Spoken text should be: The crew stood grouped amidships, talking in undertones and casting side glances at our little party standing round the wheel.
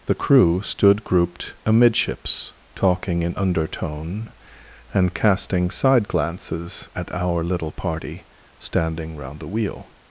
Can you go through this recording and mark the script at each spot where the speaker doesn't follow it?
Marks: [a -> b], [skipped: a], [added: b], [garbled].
The crew stood grouped amidships, talking in [undertones -> undertone] and casting side glances at our little party standing round the wheel.